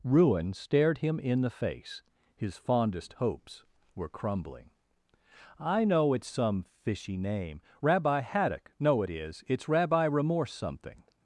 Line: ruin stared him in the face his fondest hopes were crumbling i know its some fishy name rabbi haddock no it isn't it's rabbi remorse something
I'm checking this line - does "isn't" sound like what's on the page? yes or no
no